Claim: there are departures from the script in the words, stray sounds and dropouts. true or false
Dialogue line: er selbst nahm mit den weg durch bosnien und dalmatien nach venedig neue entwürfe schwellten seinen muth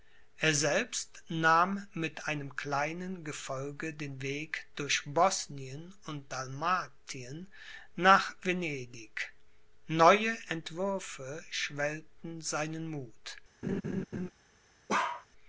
true